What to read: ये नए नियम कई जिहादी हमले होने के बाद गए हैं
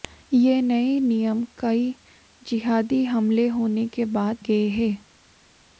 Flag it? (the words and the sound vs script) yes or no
no